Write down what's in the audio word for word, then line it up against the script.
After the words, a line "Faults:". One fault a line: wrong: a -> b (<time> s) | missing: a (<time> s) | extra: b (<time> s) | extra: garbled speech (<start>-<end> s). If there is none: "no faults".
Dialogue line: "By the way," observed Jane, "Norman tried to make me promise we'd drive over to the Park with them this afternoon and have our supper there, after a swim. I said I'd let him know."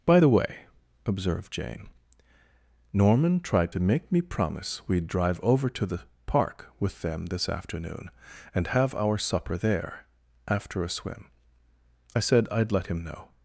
"By the way," observed Jane, "Norman tried to make me promise we'd drive over to the Park with them this afternoon and have our supper there, after a swim. I said I'd let him know."
Faults:
no faults